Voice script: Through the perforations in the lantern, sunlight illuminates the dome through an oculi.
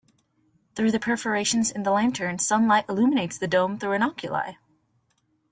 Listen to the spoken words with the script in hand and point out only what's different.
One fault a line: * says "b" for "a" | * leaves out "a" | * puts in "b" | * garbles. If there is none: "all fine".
all fine